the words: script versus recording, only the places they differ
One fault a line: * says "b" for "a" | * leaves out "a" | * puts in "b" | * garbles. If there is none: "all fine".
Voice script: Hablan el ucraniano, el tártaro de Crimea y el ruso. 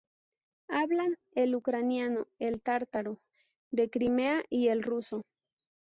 all fine